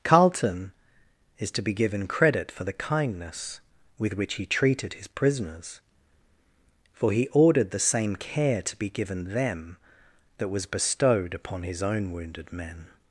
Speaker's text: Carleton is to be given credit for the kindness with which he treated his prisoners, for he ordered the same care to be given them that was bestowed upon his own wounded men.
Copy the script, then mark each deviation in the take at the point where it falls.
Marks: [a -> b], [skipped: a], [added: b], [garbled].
Carleton is to be given credit for the kindness with which he treated his prisoners, for he ordered the same care to be given them that was bestowed upon his own wounded men.